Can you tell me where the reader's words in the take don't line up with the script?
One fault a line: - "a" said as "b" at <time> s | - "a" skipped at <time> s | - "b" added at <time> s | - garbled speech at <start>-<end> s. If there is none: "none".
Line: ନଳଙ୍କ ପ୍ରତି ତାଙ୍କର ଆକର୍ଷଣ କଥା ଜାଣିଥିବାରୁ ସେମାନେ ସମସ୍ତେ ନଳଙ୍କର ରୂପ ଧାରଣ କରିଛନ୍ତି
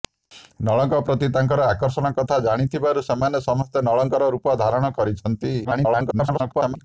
- garbled speech at 5.6-6.8 s